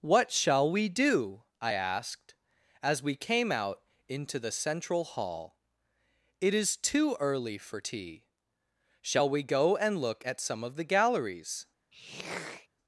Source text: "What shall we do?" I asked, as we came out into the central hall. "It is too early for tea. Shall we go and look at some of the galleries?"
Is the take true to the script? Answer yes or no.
yes